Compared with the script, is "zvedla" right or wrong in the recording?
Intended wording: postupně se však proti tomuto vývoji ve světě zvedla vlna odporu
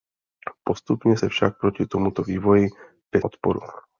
wrong